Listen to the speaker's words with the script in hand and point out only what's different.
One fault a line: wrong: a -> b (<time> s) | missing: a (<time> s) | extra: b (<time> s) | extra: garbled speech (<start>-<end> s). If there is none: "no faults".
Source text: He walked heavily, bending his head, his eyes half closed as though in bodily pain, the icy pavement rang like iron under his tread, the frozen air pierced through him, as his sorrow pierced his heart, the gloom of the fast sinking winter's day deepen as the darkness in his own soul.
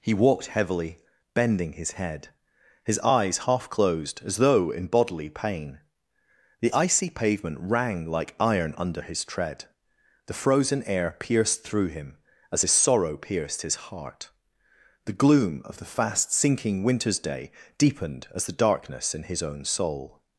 wrong: deepen -> deepened (17.8 s)